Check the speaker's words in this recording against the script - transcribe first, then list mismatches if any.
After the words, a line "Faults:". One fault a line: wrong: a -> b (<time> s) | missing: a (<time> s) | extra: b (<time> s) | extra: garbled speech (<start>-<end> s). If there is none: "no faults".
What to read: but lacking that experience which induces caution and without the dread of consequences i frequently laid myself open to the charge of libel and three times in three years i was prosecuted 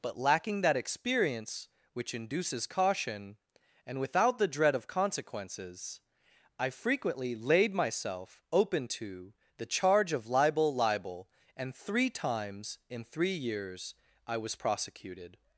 but lacking that experience which induces caution and without the dread of consequences i frequently laid myself open to the charge of libel libel and three times in three years i was prosecuted
Faults:
extra: libel (10.7 s)